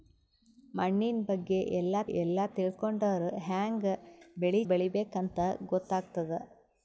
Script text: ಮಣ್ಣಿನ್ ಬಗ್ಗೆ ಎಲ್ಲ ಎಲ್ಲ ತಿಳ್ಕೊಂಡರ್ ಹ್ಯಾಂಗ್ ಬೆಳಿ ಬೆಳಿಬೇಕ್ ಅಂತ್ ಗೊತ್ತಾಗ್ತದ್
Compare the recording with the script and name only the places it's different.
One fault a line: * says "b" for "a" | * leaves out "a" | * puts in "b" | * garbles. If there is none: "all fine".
all fine